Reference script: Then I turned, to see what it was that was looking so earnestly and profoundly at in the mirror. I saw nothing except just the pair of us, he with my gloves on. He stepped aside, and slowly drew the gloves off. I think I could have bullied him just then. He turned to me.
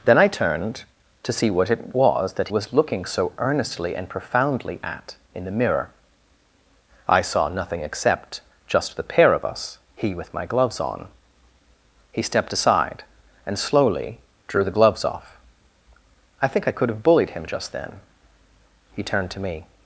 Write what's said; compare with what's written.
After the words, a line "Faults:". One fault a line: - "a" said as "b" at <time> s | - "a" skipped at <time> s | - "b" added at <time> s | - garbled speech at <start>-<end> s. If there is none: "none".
Then I turned, to see what it was that was looking so earnestly and profoundly at in the mirror. I saw nothing except just the pair of us, he with my gloves on. He stepped aside, and slowly drew the gloves off. I think I could have bullied him just then. He turned to me.
Faults:
none